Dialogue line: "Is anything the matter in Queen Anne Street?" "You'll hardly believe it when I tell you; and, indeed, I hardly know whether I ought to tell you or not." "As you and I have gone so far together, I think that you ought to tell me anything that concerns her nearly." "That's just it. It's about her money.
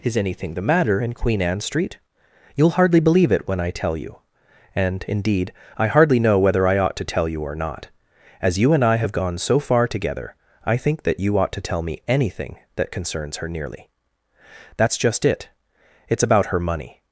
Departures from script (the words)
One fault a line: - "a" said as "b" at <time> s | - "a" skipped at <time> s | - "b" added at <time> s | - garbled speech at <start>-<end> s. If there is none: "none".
none